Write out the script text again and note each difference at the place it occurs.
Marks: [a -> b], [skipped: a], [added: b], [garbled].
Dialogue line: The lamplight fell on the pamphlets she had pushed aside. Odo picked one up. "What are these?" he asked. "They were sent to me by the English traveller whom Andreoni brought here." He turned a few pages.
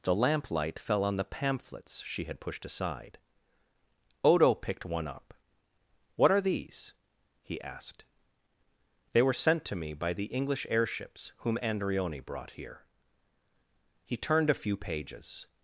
The lamplight fell on the pamphlets she had pushed aside. Odo picked one up. "What are these?" he asked. "They were sent to me by the English [traveller -> airships] whom Andreoni brought here." He turned a few pages.